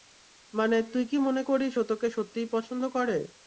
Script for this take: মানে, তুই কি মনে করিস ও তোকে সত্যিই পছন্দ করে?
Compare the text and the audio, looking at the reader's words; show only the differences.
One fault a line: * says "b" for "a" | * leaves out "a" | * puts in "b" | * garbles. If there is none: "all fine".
all fine